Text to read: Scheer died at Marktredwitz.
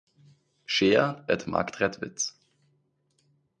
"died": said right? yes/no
no